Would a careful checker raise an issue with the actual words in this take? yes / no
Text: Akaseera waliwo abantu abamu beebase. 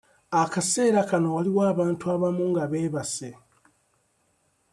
yes